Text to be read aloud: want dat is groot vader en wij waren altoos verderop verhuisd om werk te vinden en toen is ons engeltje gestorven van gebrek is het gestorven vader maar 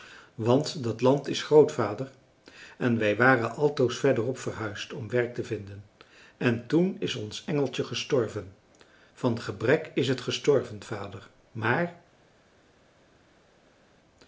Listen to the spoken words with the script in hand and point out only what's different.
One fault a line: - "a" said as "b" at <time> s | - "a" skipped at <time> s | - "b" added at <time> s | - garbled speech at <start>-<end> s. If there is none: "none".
- "land" added at 1.0 s